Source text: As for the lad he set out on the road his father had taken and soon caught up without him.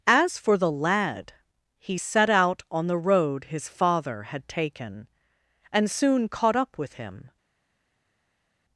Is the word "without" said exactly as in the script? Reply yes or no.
no